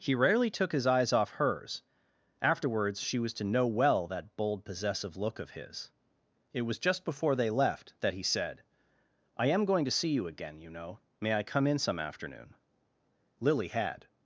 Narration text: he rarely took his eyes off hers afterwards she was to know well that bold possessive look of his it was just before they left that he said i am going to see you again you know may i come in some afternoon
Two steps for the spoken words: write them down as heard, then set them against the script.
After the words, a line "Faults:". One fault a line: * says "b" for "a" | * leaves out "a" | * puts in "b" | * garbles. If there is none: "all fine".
he rarely took his eyes off hers afterwards she was to know well that bold possessive look of his it was just before they left that he said i am going to see you again you know may i come in some afternoon lily had
Faults:
* puts in "lily had"